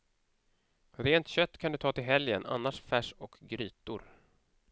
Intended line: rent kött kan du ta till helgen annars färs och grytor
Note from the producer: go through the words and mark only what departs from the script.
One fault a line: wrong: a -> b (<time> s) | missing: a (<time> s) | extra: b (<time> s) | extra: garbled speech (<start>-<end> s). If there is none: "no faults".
no faults